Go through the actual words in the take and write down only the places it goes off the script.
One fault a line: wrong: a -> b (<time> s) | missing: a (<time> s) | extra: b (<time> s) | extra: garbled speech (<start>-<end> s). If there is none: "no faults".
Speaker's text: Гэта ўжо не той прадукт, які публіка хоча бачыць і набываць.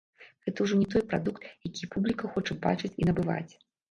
no faults